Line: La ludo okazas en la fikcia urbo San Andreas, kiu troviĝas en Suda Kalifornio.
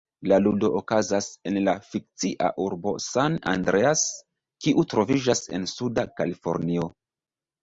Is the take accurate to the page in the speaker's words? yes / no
yes